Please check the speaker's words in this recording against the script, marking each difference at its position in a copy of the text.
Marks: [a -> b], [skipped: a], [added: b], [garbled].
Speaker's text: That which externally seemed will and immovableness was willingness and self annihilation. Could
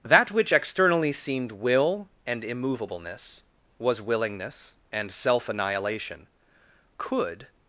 That which externally seemed will and immovableness was willingness and self annihilation. Could